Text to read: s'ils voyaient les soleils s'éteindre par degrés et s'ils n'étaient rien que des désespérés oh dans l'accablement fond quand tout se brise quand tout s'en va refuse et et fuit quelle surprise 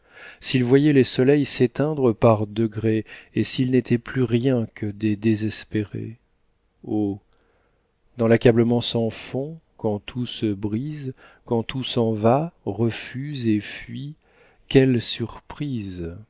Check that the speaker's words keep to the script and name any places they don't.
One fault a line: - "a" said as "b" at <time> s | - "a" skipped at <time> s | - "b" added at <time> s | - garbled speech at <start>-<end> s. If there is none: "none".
- "plus" added at 4.0 s
- "sans" added at 8.8 s
- "et" skipped at 13.6 s